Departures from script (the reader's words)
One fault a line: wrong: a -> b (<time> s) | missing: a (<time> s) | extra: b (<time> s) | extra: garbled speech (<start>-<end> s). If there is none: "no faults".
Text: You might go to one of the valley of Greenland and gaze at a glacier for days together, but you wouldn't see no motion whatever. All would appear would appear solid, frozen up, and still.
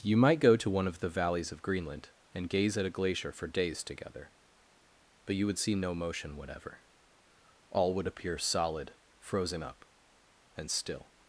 wrong: valley -> valleys (1.1 s)
wrong: wouldn't -> would (5.5 s)
missing: would appear (8.4 s)